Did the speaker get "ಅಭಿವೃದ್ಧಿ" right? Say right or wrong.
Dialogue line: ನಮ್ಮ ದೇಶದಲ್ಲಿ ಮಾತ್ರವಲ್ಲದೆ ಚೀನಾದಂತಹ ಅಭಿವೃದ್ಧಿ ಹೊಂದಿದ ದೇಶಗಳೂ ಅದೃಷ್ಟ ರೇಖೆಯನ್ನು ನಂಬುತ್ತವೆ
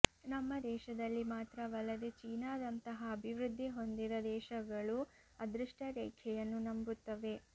right